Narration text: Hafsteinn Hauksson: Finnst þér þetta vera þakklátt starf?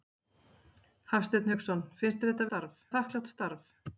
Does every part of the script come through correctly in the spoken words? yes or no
no